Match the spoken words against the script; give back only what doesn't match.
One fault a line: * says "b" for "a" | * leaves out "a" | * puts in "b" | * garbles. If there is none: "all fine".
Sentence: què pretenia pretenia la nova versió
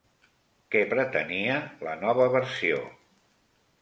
* leaves out "pretenia"